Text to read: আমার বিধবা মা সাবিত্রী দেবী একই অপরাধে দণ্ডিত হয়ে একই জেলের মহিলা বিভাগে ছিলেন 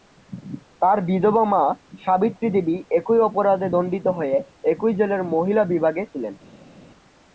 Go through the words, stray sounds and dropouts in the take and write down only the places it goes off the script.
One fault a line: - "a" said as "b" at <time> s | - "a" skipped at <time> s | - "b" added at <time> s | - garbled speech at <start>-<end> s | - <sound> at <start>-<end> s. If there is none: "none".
- "আমার" said as "তার" at 0.8 s